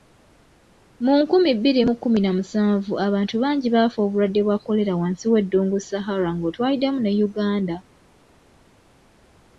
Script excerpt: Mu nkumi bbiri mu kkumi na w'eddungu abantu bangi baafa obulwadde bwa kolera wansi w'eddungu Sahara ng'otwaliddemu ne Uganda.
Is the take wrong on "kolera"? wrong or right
right